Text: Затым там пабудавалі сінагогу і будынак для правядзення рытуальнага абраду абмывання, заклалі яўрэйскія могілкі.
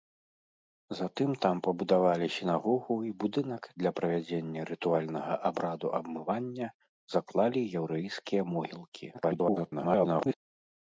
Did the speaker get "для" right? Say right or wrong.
right